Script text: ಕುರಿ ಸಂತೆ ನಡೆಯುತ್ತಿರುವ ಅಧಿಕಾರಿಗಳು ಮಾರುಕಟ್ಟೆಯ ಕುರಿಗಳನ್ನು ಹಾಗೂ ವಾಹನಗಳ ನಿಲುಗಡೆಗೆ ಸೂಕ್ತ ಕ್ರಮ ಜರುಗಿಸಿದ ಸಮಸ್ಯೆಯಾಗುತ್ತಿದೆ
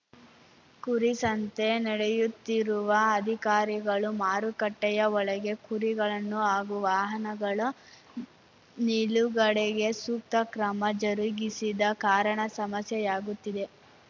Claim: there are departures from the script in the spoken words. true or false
true